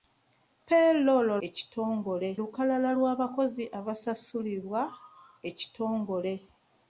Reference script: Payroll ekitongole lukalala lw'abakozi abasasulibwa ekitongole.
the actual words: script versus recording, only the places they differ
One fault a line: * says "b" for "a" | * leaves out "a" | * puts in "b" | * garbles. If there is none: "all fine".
all fine